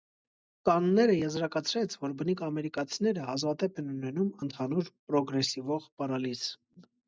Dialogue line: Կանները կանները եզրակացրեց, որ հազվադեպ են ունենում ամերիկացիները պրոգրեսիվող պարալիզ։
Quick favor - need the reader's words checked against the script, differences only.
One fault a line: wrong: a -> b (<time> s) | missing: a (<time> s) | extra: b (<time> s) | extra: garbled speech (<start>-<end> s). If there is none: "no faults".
missing: կանները (1.2 s)
extra: բնիկ ամերիկացիները (2.2 s)
wrong: ամերիկացիները -> ընդհանուր (4.5 s)